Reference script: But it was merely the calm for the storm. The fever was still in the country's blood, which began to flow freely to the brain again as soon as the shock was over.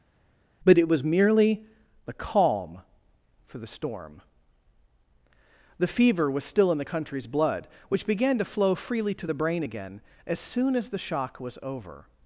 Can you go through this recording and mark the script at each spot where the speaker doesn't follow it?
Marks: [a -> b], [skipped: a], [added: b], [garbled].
But it was merely the calm for the storm. The fever was still in the country's blood, which began to flow freely to the brain again as soon as the shock was over.